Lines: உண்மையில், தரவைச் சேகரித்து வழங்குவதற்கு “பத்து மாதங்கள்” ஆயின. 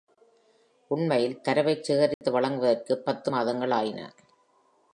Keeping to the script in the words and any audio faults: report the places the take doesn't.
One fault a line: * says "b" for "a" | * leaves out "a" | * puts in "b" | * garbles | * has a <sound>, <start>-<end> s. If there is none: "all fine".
* has a dropout, 2.1-2.2 s